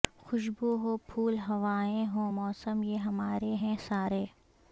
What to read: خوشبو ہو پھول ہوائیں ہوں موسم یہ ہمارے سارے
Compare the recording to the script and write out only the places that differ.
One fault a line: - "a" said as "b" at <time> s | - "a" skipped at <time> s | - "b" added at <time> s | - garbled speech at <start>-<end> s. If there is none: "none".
- "ہیں" added at 3.6 s